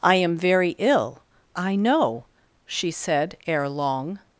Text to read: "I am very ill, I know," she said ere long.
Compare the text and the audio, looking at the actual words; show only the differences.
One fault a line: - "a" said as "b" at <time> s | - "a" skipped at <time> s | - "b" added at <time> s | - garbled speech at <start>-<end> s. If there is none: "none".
none